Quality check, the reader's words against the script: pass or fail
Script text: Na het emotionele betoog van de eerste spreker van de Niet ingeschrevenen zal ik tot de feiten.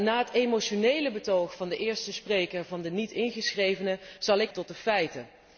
pass